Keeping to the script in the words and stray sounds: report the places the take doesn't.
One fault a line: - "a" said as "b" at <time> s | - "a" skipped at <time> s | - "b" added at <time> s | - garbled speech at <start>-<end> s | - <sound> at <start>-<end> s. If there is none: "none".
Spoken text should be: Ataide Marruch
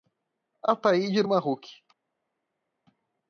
none